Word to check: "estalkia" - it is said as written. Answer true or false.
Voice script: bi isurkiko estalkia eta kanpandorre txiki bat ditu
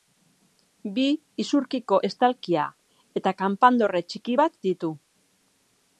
true